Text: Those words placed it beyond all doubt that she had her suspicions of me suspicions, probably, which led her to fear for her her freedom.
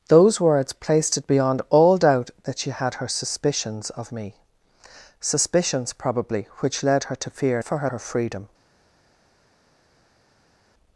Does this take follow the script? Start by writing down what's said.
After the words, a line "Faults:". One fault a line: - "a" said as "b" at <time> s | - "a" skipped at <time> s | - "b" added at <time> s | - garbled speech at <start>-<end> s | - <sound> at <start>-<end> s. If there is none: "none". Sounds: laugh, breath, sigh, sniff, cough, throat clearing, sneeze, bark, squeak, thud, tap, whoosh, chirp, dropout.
Those words placed it beyond all doubt that she had her suspicions of me suspicions, probably, which led her to fear for her her freedom.
Faults:
none